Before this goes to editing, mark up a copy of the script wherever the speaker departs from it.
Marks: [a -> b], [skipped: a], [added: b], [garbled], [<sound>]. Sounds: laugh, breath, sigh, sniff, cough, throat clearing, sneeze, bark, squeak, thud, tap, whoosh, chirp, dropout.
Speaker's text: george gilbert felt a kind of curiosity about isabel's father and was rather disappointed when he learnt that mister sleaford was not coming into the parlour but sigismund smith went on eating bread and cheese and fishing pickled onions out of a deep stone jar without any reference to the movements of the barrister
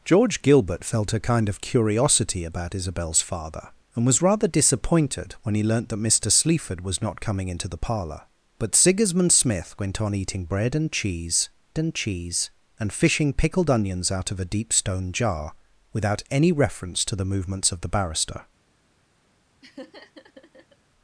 george gilbert felt a kind of curiosity about isabel's father and was rather disappointed when he learnt that mister sleaford was not coming into the parlour but sigismund smith went on eating bread and cheese and [added: cheese and] fishing pickled onions out of a deep stone jar without any reference to the movements of the barrister [laugh]